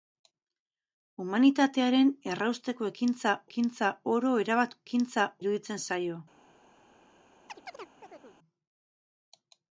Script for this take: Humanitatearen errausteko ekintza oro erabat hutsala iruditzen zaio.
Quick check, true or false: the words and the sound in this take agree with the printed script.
false